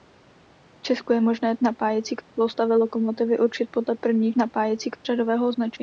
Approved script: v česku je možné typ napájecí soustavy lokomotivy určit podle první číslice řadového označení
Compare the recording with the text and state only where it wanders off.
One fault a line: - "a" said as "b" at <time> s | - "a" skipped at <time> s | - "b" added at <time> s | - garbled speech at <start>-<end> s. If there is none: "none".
- "typ" skipped at 1.6 s
- "číslice" said as "napájecí" at 4.4 s